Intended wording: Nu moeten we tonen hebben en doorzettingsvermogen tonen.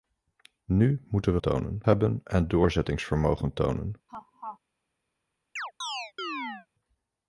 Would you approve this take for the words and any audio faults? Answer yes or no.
no